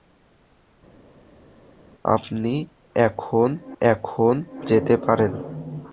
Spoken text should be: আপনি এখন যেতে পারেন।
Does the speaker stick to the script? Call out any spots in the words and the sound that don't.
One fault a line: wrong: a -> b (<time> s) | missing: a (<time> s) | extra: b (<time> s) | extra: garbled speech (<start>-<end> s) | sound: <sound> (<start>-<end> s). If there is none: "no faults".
extra: এখন (3.8 s)